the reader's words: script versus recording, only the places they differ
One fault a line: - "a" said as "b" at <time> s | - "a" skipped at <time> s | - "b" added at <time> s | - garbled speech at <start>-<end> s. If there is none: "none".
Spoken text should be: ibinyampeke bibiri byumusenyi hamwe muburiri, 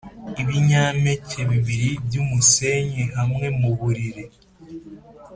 none